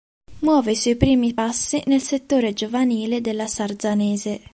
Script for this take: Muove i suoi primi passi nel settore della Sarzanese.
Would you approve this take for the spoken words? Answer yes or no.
no